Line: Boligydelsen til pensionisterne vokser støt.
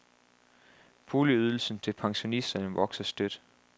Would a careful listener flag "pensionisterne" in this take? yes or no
no